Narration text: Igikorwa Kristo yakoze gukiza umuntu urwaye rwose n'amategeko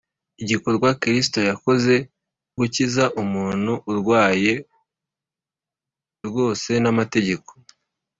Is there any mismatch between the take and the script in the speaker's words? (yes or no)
no